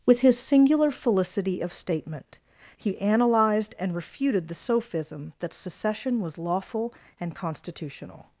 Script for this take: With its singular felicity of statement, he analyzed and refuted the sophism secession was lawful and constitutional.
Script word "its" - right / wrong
wrong